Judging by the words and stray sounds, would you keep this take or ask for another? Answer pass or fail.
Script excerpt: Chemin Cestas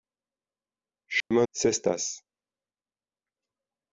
fail